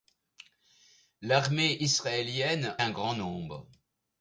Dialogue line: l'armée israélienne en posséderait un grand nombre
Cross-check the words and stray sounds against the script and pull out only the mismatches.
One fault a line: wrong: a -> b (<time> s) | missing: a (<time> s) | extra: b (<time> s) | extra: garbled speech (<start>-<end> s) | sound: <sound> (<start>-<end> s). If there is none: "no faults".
missing: en posséderait (2.8 s)